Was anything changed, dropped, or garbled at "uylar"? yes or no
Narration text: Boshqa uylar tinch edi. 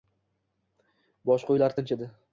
no